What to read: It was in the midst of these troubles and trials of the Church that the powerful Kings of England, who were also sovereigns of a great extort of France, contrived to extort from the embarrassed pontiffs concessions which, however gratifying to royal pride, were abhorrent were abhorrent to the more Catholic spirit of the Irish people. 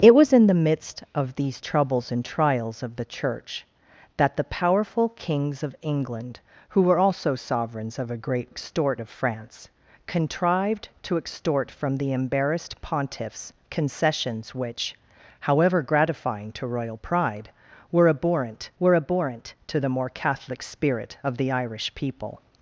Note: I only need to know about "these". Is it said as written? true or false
true